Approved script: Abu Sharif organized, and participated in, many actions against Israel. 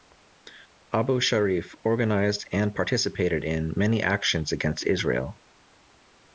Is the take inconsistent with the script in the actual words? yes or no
no